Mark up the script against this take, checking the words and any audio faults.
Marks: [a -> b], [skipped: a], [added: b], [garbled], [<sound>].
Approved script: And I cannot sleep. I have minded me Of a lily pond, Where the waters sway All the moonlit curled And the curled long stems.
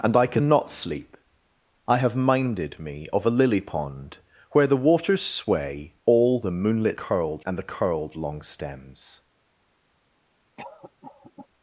And I cannot sleep. I have minded me Of a lily pond, Where the waters sway All the moonlit curled And the curled long stems. [cough]